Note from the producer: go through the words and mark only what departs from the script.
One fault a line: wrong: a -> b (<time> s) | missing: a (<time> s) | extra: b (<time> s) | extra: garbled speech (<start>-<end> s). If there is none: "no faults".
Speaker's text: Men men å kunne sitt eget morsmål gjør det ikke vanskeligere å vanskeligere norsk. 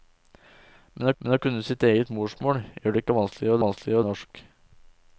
no faults